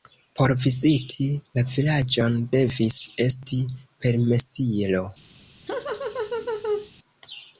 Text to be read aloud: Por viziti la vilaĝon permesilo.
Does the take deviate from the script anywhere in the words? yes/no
yes